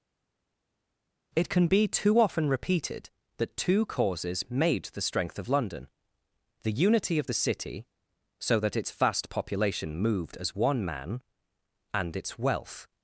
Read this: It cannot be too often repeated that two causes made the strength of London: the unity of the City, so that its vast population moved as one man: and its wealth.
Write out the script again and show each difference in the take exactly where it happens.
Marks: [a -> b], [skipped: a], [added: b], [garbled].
It [cannot -> can] be too often repeated that two causes made the strength of London: the unity of the City, so that its vast population moved as one man: and its wealth.